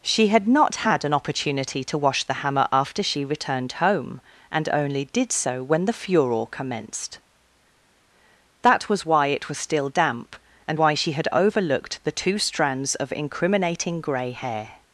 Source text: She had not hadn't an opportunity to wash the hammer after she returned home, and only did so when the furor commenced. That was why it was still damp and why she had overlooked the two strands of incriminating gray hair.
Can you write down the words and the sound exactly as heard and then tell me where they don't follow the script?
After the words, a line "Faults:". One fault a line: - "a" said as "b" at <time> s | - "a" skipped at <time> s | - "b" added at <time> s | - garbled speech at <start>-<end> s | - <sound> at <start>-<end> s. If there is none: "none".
She had not had an opportunity to wash the hammer after she returned home, and only did so when the furor commenced. That was why it was still damp and why she had overlooked the two strands of incriminating gray hair.
Faults:
- "hadn't" said as "had" at 0.8 s